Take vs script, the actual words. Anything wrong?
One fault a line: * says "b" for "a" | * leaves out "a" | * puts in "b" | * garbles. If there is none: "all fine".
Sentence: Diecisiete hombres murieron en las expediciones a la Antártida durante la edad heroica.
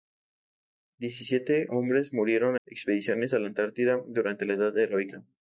* leaves out "en las"